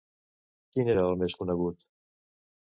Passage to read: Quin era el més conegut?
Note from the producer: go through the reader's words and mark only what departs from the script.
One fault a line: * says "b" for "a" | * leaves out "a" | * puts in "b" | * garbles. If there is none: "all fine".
all fine